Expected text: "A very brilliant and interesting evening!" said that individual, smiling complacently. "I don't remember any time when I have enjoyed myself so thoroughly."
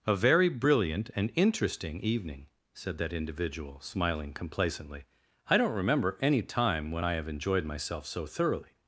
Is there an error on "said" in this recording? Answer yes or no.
no